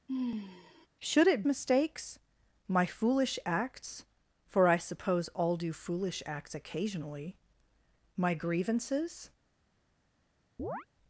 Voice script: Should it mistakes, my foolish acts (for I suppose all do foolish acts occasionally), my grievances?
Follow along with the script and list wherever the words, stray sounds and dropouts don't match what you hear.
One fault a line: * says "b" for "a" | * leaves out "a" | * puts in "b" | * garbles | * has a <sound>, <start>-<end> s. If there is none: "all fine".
* has a sigh, 0.1-0.9 s
* has a chirp, 10.6-10.9 s